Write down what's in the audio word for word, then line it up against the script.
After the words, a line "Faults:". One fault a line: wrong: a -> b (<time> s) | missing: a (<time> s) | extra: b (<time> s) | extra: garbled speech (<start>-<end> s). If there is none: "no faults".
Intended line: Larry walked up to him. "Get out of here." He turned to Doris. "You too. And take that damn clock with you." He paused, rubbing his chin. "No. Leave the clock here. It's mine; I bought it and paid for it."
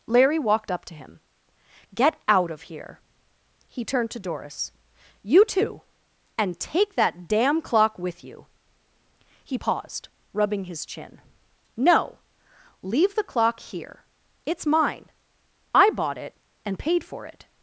Larry walked up to him. "Get out of here." He turned to Doris. "You too. And take that damn clock with you." He paused, rubbing his chin. "No. Leave the clock here. It's mine; I bought it and paid for it."
Faults:
no faults